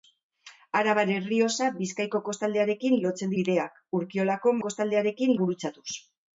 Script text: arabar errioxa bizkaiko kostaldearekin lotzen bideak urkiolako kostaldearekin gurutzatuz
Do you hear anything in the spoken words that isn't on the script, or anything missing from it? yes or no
no